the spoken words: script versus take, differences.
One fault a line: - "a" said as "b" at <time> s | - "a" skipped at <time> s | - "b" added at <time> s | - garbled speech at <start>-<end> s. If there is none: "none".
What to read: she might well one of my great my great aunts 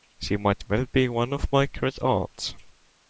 - "be" added at 0.9 s
- "my great" skipped at 2.0 s